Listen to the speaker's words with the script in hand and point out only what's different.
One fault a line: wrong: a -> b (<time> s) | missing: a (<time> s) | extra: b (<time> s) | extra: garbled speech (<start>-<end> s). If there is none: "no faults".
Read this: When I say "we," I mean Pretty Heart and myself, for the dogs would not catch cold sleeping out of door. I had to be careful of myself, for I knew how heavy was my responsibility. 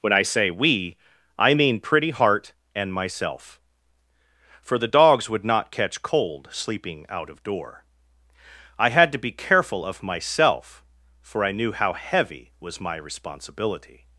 no faults